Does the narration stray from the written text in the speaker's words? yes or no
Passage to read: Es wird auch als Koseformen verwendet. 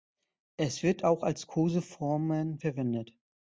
no